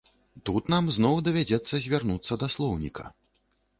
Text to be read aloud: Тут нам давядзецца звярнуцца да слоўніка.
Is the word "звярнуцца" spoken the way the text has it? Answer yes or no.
yes